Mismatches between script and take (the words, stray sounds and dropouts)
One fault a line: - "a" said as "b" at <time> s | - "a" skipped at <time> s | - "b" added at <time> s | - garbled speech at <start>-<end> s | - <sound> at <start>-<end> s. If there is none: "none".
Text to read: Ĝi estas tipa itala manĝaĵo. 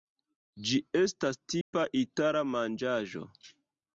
- dropout at 1.6-1.7 s